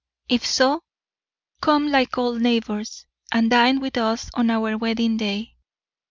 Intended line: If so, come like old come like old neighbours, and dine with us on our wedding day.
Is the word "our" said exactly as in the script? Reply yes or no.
yes